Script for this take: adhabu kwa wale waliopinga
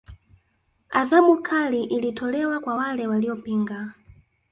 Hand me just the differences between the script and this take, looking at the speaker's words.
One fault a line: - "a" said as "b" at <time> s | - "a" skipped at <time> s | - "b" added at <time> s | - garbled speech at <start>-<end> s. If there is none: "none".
- "kali ilitolewa" added at 1.4 s